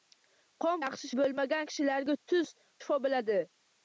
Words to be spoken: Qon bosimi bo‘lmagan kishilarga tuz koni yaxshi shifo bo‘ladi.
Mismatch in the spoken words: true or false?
true